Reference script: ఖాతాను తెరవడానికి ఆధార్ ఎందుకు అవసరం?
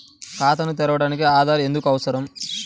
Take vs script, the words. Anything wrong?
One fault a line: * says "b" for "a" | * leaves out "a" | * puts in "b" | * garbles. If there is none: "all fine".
all fine